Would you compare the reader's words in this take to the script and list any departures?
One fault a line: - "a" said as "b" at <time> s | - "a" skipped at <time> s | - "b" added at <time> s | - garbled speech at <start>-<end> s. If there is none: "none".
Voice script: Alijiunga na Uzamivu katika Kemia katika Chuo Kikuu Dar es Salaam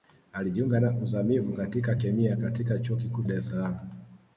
none